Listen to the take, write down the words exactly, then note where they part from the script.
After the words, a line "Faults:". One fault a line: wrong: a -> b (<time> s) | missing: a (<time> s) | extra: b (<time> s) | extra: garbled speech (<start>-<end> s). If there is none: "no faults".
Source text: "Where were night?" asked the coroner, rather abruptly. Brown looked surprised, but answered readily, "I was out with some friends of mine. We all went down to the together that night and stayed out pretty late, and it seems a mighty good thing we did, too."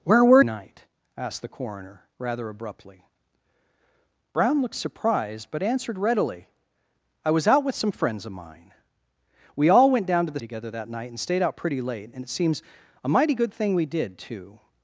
"Where were night?" asked the coroner, rather abruptly. Brown looked surprised, but answered readily, "I was out with some friends of mine. We all went down to the together that night and stayed out pretty late, and it seems a mighty good thing we did, too."
Faults:
no faults